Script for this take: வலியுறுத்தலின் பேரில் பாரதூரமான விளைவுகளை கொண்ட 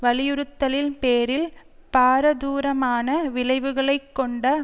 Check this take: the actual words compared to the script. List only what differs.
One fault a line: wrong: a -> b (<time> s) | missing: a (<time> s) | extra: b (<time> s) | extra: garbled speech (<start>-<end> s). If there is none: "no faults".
no faults